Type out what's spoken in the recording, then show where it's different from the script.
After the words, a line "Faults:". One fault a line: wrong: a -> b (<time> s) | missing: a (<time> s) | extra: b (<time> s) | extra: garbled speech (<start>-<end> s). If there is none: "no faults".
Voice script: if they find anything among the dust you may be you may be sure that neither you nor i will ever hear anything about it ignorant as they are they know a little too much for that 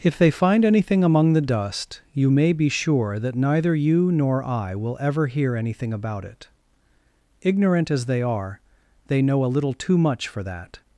if they find anything among the dust you may be sure that neither you nor i will ever hear anything about it ignorant as they are they know a little too much for that
Faults:
missing: you may be (2.7 s)